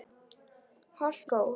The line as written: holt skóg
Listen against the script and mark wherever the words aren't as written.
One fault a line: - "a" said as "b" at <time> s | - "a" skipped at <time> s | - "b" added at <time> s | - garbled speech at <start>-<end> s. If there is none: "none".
none